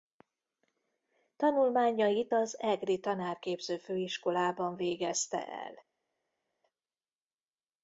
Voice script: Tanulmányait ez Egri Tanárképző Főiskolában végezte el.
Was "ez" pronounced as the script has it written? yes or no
no